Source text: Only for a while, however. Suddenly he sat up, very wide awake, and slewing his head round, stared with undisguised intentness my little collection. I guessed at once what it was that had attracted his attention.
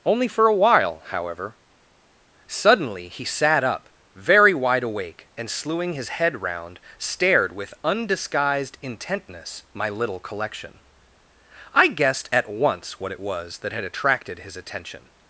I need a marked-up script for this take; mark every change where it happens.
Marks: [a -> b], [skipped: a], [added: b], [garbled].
Only for a while, however. Suddenly he sat up, very wide awake, and slewing his head round, stared with undisguised intentness my little collection. I guessed at once what it was that had attracted his attention.